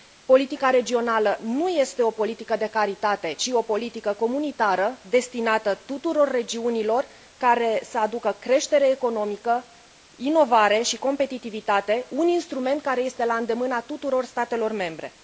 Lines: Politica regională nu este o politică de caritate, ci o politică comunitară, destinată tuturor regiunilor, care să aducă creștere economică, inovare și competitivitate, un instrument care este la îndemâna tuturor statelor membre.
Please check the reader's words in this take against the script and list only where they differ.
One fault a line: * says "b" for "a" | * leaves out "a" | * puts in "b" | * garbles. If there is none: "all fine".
all fine